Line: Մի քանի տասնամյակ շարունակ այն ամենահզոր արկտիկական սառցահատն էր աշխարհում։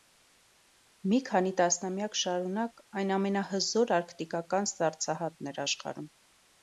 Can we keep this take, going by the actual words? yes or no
yes